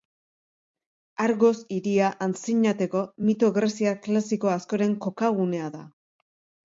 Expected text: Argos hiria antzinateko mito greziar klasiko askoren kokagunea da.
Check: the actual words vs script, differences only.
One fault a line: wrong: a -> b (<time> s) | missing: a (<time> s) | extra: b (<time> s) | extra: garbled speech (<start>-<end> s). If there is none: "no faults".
no faults